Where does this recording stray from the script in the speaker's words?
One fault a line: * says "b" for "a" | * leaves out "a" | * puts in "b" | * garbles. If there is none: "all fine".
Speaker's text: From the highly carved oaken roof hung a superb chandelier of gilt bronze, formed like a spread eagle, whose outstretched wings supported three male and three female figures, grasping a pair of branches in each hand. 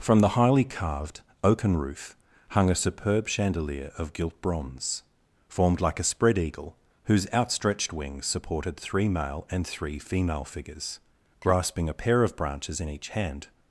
all fine